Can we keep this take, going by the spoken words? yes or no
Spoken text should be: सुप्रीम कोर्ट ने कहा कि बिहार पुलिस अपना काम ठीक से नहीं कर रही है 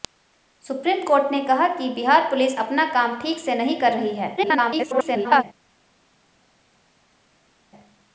no